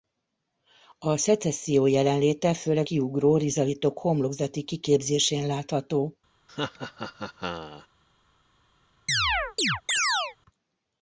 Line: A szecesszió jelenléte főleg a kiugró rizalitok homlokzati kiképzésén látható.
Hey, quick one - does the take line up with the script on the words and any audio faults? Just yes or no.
no